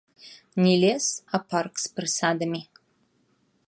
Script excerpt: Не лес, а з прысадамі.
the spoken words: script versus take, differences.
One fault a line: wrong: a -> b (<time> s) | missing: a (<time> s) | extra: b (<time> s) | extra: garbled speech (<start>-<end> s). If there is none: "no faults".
extra: парк (1.5 s)